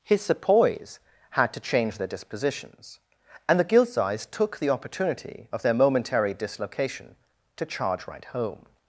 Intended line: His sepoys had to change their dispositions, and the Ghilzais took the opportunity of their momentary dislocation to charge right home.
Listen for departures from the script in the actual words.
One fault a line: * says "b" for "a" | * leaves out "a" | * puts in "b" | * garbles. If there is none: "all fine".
all fine